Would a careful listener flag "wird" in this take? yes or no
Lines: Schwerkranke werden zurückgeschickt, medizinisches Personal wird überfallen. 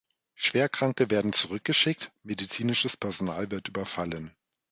no